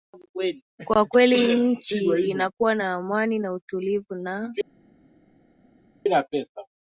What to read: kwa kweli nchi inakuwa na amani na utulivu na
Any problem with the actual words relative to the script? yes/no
no